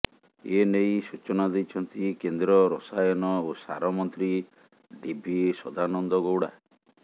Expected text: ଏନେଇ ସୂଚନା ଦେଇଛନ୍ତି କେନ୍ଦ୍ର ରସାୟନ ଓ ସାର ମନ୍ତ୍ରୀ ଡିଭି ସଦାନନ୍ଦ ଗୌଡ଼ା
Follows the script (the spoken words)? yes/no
yes